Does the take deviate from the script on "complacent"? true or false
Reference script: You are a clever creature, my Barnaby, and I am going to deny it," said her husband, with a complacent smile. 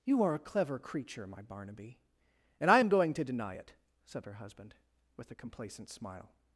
false